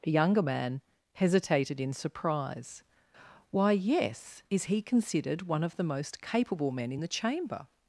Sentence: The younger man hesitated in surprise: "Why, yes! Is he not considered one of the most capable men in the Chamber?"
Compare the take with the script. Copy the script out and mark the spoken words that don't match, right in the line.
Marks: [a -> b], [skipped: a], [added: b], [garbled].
The younger man hesitated in surprise: "Why, yes! Is he [skipped: not] considered one of the most capable men in the Chamber?"